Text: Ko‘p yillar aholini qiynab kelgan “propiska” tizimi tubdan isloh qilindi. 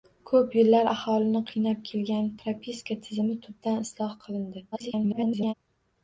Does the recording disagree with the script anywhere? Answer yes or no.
yes